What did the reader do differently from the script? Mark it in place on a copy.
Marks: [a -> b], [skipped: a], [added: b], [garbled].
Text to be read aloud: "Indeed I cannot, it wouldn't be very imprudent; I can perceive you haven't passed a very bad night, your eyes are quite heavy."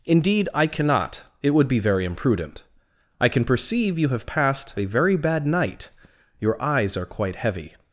"Indeed I cannot, it [wouldn't -> would] be very imprudent; I can perceive you [haven't -> have] passed a very bad night, your eyes are quite heavy."